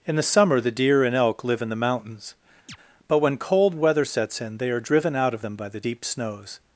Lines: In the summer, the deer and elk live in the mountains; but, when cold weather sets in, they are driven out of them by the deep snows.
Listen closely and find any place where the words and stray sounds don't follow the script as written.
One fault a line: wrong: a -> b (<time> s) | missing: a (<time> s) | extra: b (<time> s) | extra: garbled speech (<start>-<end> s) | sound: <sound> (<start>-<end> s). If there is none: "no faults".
sound: chirp (2.7-2.8 s)